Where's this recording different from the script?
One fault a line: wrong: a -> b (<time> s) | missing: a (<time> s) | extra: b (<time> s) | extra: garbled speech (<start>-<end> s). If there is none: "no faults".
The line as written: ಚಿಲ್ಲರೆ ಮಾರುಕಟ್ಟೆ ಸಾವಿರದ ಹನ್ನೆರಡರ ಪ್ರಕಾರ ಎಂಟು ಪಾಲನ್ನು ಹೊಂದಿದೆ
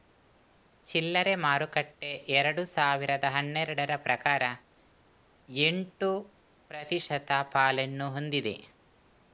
extra: ಎರಡು (2.3 s)
extra: ಪ್ರತಿಶತ (6.7 s)